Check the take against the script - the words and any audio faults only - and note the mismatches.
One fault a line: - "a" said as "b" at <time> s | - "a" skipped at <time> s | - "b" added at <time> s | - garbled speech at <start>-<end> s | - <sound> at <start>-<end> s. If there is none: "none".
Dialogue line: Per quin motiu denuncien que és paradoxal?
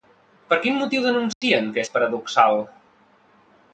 - dropout at 1.3-1.4 s